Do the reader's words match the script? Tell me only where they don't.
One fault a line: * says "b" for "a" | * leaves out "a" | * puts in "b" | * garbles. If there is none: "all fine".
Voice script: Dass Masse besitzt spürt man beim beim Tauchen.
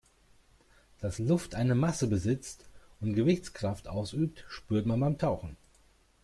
* puts in "Luft eine"
* puts in "und Gewichtskraft ausübt"
* leaves out "beim"